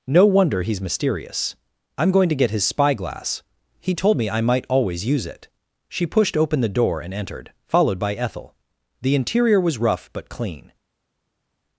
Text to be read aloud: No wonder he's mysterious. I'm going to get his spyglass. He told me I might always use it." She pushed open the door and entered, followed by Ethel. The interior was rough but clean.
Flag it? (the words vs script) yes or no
no